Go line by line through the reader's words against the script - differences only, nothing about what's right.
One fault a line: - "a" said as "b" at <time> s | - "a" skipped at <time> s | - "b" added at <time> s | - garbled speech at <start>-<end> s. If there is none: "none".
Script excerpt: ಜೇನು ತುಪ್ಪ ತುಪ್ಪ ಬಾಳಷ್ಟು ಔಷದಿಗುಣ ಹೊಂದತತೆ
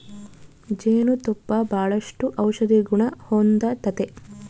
- "ತುಪ್ಪ" skipped at 1.5 s